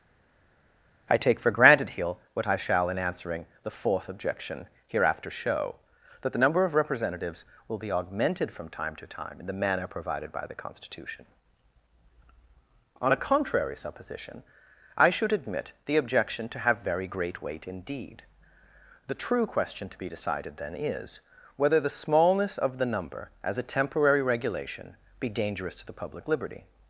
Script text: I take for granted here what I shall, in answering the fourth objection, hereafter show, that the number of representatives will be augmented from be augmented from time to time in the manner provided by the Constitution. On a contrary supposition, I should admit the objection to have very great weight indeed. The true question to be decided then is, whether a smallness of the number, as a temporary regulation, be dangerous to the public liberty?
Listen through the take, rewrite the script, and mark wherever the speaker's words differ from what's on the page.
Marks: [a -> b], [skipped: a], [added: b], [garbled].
I take for granted here what I shall, in answering the fourth objection, hereafter show, that the number of representatives will be augmented from [skipped: be augmented from] time to time in the manner provided by the Constitution. On a contrary supposition, I should admit the objection to have very great weight indeed. The true question to be decided then is, whether [a -> the] smallness of the number, as a temporary regulation, be dangerous to the public liberty?